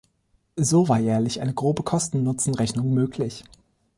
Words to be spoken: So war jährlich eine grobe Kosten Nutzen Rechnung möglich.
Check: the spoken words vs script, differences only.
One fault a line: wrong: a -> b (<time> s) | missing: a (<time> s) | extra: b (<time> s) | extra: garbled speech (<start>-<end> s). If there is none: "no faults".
no faults